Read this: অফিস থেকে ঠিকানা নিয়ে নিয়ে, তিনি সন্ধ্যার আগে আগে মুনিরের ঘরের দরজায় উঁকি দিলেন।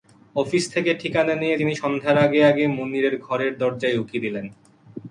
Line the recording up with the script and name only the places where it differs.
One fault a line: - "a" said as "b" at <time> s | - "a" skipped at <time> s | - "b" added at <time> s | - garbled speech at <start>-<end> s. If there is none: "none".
- "নিয়ে" skipped at 1.6 s